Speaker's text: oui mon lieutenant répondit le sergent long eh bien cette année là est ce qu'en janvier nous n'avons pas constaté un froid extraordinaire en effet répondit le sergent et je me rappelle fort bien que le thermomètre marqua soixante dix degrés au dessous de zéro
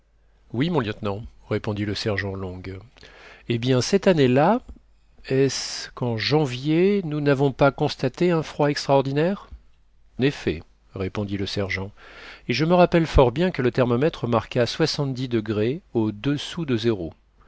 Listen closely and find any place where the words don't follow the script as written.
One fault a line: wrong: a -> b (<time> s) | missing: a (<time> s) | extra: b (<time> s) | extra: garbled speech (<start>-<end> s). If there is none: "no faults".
missing: en (9.5 s)